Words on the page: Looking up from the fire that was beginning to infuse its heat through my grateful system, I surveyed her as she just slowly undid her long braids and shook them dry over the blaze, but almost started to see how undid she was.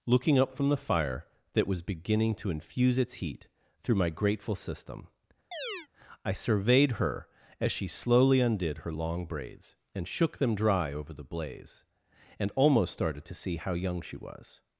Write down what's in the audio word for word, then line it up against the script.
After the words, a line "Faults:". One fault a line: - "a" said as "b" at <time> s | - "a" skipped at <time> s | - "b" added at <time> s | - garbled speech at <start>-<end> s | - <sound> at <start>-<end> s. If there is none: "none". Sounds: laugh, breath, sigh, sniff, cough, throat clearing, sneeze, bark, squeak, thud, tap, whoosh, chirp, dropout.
Looking up from the fire that was beginning to infuse its heat through my grateful system, I surveyed her as she slowly undid her long braids and shook them dry over the blaze, and almost started to see how young she was.
Faults:
- chirp at 5.5-5.9 s
- "just" skipped at 7.9 s
- "but" said as "and" at 12.4 s
- "undid" said as "young" at 13.7 s